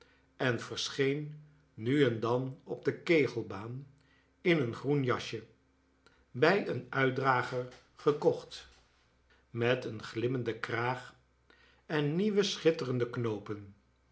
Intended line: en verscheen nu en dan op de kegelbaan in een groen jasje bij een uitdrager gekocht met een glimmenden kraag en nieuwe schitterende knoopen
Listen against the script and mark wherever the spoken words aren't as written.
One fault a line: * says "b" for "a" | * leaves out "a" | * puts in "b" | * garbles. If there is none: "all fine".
all fine